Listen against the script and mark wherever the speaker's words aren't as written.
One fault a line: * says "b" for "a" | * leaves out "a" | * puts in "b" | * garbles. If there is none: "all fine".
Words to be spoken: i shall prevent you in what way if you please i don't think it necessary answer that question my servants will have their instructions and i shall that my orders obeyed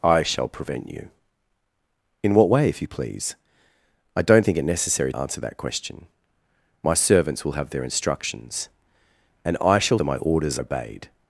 all fine